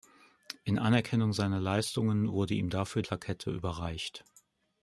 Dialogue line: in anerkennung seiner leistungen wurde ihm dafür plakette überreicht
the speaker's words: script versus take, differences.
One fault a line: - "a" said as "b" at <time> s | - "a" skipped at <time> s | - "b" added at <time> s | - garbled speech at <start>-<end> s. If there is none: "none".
none